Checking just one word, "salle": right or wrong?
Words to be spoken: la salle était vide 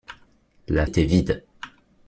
wrong